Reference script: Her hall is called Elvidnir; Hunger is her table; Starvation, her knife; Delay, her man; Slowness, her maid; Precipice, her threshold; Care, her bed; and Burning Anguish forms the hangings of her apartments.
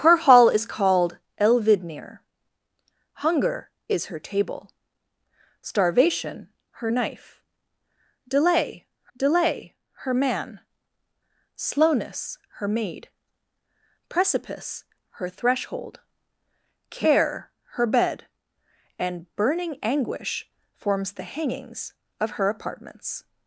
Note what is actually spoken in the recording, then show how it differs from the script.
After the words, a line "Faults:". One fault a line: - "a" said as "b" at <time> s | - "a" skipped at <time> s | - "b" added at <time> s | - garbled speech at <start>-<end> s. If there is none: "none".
Her hall is called Elvidnir; Hunger is her table; Starvation, her knife; Delay Delay, her man; Slowness, her maid; Precipice, her threshold; Care, her bed; and Burning Anguish forms the hangings of her apartments.
Faults:
- "Delay" added at 9.1 s